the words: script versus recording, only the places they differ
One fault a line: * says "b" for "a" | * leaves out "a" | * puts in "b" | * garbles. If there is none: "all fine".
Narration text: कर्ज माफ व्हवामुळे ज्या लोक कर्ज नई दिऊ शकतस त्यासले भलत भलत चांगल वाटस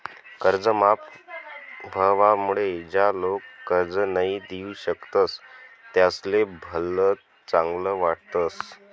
* leaves out "भलत"